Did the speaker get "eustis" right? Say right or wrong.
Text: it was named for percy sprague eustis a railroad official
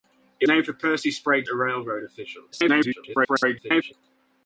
wrong